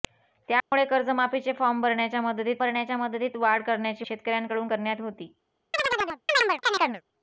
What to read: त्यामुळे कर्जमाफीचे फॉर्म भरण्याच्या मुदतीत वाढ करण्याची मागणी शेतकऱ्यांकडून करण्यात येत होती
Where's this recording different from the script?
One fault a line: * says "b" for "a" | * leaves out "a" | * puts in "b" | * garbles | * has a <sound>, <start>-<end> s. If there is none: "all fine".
* has a dropout, 0.6-0.7 s
* puts in "भरण्याच्या मुदतीत"
* leaves out "मागणी"
* leaves out "येत"
* has a chirp, 5.7-7.0 s